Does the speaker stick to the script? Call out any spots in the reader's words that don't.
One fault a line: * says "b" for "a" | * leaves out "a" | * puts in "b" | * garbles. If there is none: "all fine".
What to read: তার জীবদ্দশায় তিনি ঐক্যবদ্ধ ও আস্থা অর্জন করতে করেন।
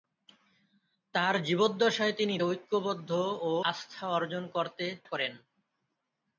all fine